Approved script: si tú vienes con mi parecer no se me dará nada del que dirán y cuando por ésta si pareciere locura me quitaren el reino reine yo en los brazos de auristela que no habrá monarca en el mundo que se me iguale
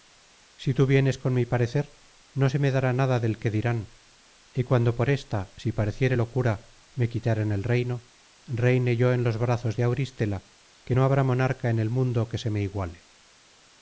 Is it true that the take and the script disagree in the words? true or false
false